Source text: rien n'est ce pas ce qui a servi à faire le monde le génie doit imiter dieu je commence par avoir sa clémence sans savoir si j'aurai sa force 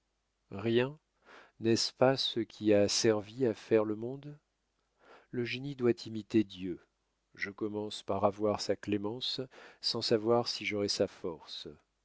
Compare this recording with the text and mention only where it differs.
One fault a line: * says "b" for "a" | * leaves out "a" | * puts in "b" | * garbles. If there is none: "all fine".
all fine